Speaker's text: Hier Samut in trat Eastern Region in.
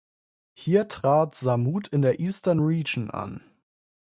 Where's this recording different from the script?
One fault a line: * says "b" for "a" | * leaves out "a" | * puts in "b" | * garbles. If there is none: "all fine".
* puts in "trat"
* says "der" for "trat"
* says "an" for "in"